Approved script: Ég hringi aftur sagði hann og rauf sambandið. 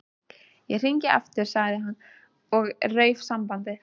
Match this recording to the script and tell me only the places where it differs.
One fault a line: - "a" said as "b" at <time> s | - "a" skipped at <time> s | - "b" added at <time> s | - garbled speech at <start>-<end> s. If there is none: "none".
none